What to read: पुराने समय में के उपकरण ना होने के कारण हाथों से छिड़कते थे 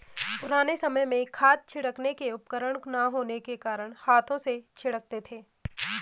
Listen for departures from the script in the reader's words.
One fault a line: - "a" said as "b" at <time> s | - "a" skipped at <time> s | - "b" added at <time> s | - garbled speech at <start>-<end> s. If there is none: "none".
- "खाद छिड़कने" added at 1.3 s